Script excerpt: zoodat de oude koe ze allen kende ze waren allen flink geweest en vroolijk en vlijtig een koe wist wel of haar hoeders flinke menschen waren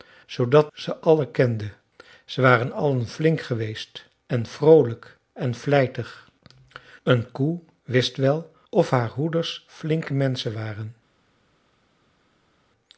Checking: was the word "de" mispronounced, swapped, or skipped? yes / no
yes